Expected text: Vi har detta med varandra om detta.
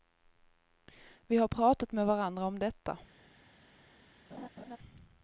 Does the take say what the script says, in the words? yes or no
no